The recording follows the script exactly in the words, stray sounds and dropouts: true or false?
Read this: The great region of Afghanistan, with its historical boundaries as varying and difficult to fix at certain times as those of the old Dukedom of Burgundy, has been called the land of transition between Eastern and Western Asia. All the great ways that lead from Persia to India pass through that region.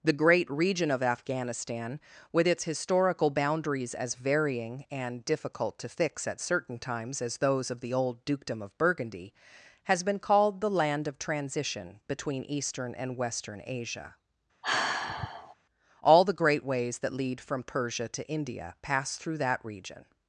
false